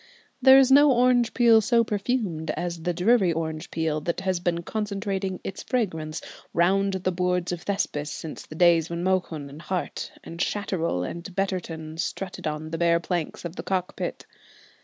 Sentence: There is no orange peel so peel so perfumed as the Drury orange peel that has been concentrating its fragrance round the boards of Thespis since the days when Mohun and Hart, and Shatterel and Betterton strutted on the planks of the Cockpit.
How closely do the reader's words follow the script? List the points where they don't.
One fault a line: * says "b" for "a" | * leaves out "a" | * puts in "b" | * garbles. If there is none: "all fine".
* leaves out "peel so"
* puts in "bare"